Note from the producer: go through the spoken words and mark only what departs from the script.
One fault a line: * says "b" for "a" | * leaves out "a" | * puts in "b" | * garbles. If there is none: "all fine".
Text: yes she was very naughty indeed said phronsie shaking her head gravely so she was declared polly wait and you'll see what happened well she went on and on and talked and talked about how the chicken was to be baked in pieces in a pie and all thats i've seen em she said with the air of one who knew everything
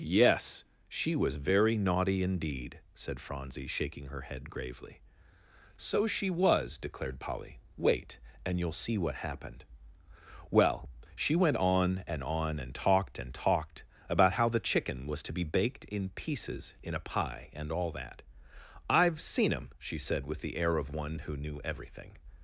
* says "that" for "thats"